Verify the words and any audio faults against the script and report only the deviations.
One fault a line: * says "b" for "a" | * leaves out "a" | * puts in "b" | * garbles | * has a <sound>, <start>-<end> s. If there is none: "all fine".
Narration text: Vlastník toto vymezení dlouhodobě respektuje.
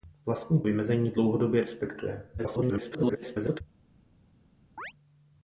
* leaves out "toto"
* garbles
* has a chirp, 4.8-4.9 s